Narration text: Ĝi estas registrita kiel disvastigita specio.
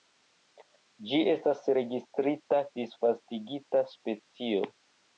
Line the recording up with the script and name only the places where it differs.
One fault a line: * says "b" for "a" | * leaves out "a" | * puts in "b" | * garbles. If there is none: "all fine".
* leaves out "kiel"